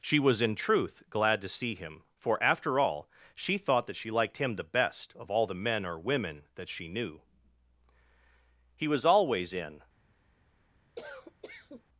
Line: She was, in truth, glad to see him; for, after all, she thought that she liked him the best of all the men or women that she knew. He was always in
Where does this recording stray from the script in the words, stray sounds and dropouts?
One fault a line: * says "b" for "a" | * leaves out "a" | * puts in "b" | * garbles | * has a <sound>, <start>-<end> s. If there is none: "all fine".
* has a cough, 11.0-11.8 s